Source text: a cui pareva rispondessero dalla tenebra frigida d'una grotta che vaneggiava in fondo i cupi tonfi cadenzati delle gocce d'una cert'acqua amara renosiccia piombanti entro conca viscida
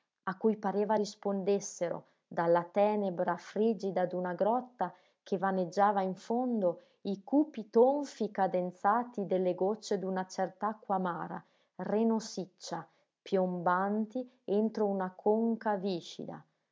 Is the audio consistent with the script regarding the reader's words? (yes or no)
no